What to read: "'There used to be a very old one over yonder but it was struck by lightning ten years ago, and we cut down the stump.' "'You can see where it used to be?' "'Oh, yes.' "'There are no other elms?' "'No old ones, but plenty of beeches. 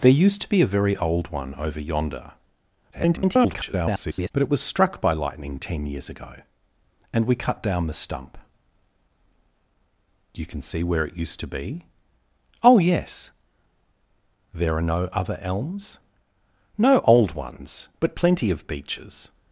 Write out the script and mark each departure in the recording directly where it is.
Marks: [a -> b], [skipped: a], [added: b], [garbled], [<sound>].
"'There used to be a very old one over yonder [garbled] but it was struck by lightning ten years ago, and we cut down the stump.' "'You can see where it used to be?' "'Oh, yes.' "'There are no other elms?' "'No old ones, but plenty of beeches.